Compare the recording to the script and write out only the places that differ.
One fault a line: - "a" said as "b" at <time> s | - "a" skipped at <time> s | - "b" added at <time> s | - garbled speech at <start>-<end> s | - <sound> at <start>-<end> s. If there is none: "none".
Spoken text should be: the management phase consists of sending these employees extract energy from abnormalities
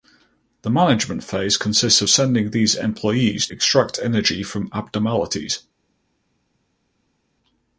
none